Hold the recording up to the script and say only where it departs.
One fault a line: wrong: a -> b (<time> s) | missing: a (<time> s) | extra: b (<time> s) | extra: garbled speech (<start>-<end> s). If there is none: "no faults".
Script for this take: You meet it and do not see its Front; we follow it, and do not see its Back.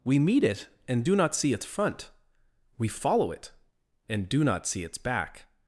wrong: You -> We (0.0 s)